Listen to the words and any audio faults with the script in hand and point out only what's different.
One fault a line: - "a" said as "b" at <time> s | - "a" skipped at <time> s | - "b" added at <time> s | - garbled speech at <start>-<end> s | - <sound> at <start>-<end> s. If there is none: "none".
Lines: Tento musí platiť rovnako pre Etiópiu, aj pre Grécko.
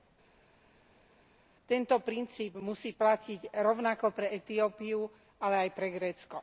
- "princíp" added at 2.0 s
- "ale" added at 5.4 s